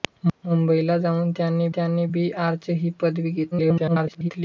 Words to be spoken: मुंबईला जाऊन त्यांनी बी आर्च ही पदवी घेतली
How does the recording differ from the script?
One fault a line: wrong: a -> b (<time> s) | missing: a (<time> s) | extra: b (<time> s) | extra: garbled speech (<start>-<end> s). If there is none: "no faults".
extra: त्यांनी (1.7 s)
extra: garbled speech (3.5-4.3 s)